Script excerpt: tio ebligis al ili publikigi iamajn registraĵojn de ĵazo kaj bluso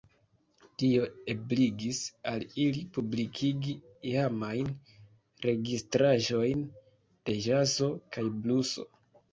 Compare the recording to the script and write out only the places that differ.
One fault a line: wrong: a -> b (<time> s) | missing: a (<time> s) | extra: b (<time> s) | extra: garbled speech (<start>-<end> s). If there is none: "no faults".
no faults